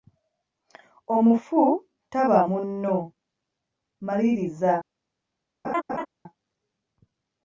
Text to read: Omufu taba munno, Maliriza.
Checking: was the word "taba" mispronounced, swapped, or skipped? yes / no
no